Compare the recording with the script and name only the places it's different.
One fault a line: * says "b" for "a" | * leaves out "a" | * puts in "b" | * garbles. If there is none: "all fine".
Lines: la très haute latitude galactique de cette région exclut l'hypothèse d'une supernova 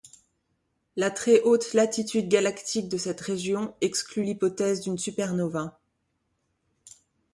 all fine